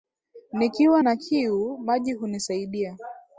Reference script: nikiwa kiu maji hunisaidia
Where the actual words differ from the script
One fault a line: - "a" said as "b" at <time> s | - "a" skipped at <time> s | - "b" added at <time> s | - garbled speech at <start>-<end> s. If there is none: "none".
- "na" added at 1.0 s